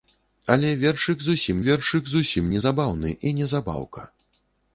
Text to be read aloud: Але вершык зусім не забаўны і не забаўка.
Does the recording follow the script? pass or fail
fail